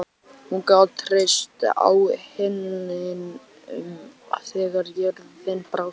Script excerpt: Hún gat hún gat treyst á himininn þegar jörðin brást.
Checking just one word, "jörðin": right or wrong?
right